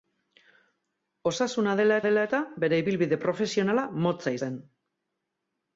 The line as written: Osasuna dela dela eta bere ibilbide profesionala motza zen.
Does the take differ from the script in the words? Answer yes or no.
no